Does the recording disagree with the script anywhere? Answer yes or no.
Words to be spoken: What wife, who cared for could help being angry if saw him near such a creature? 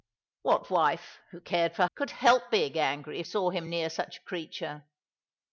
no